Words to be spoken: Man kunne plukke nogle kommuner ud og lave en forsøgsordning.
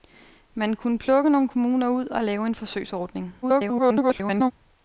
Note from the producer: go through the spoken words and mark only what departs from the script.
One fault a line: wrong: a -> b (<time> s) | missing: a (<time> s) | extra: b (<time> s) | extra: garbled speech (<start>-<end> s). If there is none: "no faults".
extra: garbled speech (3.4-4.5 s)